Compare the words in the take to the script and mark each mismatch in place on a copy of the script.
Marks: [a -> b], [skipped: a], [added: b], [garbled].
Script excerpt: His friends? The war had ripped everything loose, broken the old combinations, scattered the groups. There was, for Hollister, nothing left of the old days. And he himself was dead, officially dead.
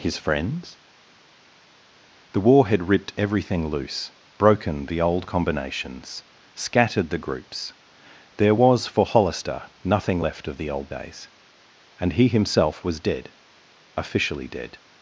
His friends? The war had ripped everything loose, broken the old combinations, scattered the groups. There was, for Hollister, nothing left of the old days. And he himself was dead, officially dead.